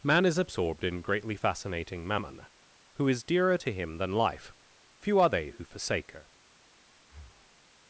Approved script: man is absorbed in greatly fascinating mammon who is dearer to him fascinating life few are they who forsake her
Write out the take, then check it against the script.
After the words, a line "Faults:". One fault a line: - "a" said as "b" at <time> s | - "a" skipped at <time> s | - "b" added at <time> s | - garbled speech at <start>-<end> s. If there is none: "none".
man is absorbed in greatly fascinating mammon who is dearer to him than life few are they who forsake her
Faults:
- "fascinating" said as "than" at 4.0 s